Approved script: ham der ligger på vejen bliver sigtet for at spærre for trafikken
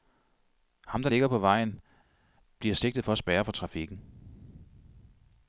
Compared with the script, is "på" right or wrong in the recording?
right